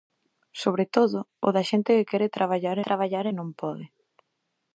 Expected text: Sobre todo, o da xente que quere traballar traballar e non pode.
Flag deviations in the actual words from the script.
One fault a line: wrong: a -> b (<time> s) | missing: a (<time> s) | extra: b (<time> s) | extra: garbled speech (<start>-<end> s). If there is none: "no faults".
no faults